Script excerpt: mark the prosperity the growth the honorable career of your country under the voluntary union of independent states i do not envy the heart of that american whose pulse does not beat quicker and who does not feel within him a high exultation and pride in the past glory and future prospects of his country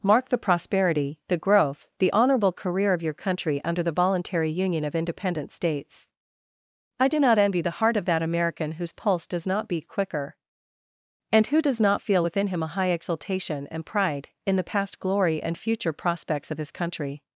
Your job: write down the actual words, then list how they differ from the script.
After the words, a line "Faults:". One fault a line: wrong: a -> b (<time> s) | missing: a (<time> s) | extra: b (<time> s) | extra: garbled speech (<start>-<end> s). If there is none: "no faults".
mark the prosperity the growth the honorable career of your country under the voluntary union of independent states i do not envy the heart of that american whose pulse does not beat quicker and who does not feel within him a high exultation and pride in the past glory and future prospects of his country
Faults:
no faults